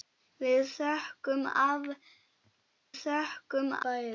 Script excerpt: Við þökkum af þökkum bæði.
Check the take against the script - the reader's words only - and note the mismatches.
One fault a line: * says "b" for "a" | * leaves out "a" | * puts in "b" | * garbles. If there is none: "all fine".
all fine